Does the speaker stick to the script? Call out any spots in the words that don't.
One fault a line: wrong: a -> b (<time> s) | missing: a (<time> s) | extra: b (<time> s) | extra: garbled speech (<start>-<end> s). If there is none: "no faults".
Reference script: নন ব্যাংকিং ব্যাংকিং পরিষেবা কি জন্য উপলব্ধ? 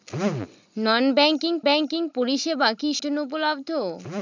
no faults